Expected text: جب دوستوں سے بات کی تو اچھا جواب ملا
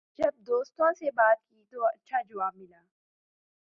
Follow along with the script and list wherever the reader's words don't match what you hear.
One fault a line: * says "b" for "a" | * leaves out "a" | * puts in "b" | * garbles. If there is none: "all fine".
all fine